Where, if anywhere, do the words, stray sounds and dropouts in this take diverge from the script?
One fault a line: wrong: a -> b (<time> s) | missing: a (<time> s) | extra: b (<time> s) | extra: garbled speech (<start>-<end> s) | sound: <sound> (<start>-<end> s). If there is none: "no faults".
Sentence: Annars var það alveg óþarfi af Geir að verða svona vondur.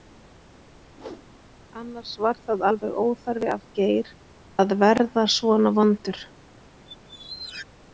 sound: whoosh (0.9-1.3 s)
sound: squeak (6.9-7.7 s)